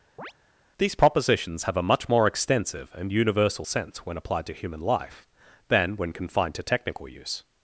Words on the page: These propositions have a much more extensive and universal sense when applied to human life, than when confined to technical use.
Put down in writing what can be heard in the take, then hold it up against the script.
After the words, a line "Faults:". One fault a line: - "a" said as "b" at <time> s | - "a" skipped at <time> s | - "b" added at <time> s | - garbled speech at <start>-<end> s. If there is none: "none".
These propositions have a much more extensive and universal sense when applied to human life, than when confined to technical use.
Faults:
none